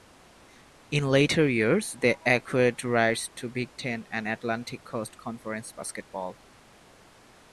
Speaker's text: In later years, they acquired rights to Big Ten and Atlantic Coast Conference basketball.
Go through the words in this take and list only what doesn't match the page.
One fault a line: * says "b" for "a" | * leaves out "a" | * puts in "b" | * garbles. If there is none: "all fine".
all fine